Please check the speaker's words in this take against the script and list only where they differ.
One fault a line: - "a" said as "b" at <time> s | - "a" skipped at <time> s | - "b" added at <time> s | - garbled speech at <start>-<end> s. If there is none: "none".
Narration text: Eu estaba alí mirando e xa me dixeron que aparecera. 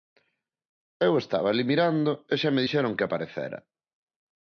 none